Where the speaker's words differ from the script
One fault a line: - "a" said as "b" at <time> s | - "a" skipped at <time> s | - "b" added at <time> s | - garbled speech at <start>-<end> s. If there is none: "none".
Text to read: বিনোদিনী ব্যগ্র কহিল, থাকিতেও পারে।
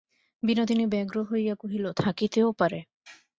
- "হইয়া" added at 1.2 s